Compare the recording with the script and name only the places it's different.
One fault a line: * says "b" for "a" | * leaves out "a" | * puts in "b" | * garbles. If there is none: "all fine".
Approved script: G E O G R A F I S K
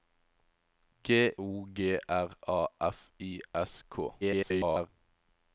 * leaves out "E"
* garbles